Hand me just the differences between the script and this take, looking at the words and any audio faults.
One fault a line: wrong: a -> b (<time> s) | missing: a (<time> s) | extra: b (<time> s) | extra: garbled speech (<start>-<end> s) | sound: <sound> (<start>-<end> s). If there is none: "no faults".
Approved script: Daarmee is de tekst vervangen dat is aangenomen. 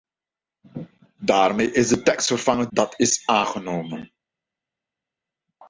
no faults